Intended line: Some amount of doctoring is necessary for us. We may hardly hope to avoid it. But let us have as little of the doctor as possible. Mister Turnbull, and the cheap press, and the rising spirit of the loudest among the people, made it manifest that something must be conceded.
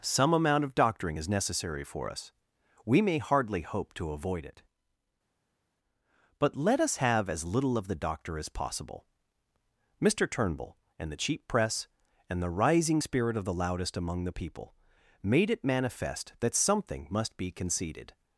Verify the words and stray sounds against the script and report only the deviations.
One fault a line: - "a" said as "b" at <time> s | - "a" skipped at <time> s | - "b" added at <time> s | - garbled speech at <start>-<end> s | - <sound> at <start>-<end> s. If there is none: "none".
none